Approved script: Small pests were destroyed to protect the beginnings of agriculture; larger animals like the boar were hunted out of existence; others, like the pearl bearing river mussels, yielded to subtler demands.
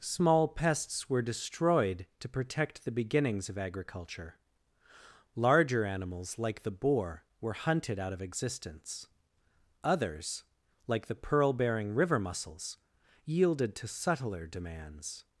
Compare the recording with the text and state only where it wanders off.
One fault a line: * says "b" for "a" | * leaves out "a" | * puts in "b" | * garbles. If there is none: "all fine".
all fine